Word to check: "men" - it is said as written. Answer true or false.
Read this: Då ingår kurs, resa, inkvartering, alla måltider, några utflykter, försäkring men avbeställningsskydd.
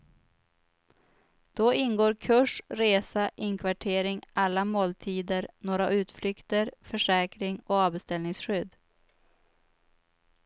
false